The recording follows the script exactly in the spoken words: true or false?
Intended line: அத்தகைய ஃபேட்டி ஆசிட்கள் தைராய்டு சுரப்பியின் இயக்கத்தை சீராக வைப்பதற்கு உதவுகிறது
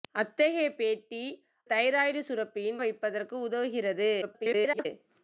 false